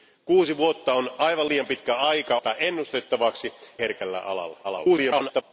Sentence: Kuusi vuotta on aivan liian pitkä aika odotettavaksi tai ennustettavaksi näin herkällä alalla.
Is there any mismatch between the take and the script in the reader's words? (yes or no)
yes